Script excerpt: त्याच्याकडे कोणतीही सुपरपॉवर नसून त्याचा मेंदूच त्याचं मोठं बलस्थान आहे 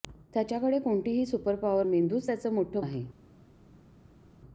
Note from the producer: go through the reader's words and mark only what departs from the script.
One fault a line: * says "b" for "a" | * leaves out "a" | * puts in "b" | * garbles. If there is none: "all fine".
* leaves out "नसून त्याचा"
* leaves out "बलस्थान"